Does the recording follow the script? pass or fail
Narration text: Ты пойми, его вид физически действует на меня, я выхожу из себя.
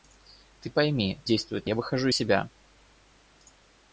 fail